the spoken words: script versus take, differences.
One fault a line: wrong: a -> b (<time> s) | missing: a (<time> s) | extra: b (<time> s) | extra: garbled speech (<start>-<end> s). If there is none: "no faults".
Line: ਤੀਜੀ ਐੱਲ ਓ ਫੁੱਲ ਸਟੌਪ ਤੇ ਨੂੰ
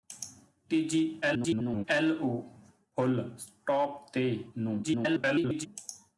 extra: garbled speech (1.2-1.8 s)
extra: garbled speech (4.8-5.7 s)